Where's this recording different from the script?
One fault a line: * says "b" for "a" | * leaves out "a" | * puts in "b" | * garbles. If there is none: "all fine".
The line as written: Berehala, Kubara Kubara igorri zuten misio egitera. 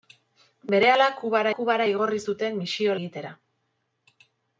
all fine